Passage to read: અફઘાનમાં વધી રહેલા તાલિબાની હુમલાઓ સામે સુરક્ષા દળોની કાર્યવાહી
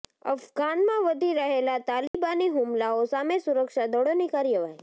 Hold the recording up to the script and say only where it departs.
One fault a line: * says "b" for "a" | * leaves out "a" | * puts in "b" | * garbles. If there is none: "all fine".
all fine